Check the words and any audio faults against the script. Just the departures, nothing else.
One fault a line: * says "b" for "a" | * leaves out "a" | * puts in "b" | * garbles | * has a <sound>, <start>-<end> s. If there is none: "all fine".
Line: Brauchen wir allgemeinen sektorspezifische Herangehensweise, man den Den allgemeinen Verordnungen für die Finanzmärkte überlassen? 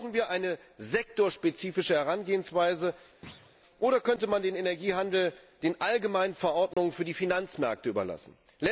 * says "eine" for "allgemeinen"
* has a thud, 3.2-3.6 s
* puts in "oder könnte"
* puts in "Energiehandel"
* has a dropout, 6.7-6.8 s